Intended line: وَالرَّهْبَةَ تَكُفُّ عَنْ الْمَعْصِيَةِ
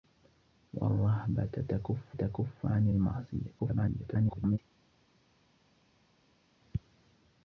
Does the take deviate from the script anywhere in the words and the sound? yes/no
yes